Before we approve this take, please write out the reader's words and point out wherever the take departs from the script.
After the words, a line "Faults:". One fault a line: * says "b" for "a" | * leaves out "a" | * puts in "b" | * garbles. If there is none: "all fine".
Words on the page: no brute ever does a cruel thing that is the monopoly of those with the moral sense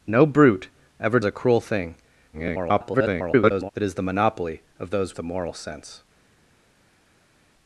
no brute ever a cruel thing [garbled] that is the monopoly of those the moral sense
Faults:
* leaves out "does"
* garbles
* leaves out "with"